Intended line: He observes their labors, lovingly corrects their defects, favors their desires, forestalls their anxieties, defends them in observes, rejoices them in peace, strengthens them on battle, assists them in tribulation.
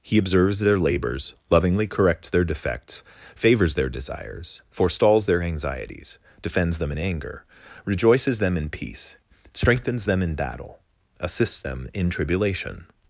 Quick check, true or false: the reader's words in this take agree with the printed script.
false